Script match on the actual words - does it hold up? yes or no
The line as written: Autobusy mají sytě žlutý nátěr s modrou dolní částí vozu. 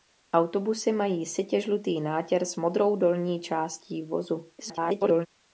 no